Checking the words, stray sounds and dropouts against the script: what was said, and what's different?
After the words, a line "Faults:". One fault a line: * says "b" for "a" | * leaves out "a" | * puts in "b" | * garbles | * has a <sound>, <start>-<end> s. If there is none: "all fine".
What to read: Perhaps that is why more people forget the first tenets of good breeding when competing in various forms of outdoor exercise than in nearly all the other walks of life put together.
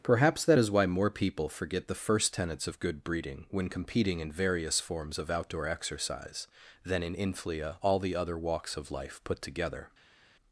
Perhaps that is why more people forget the first tenets of good breeding when competing in various forms of outdoor exercise than in inflia all the other walks of life put together.
Faults:
* says "inflia" for "nearly"